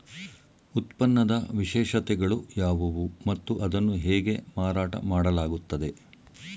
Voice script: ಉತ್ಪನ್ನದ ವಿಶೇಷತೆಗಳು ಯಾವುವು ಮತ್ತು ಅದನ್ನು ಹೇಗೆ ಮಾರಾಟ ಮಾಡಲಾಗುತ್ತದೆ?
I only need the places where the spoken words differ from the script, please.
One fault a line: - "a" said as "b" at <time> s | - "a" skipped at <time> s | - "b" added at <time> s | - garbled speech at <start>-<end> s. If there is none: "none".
none